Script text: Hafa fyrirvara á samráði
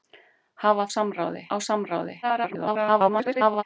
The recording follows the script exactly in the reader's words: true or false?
false